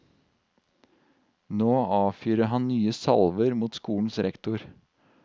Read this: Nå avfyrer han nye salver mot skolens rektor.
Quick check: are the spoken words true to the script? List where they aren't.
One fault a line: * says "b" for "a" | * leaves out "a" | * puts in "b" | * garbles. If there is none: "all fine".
all fine